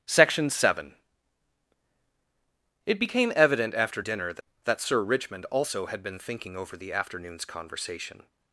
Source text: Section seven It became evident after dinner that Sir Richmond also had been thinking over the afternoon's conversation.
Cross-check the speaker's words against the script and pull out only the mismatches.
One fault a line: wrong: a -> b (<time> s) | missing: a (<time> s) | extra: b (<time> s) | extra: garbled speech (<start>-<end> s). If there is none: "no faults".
extra: that (4.6 s)